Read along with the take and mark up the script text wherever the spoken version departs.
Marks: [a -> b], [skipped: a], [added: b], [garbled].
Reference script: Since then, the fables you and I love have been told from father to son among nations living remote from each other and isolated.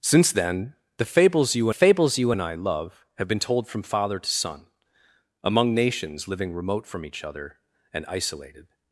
Since then, the fables you [added: fables you] and I love have been told from father to son among nations living remote from each other and isolated.